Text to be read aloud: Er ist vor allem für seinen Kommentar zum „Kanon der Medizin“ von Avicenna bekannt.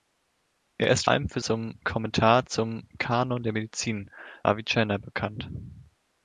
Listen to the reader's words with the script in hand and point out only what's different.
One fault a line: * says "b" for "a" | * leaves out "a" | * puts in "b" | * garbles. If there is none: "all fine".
* leaves out "vor"
* says "zum" for "seinen"
* leaves out "von"